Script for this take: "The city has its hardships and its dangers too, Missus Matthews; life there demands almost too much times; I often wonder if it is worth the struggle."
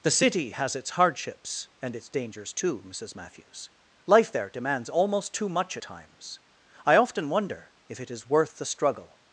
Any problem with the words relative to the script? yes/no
no